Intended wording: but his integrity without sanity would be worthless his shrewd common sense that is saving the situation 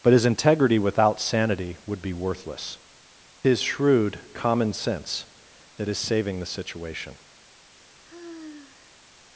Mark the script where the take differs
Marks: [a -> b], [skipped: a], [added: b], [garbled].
but his integrity without sanity would be worthless his shrewd common sense that is saving the situation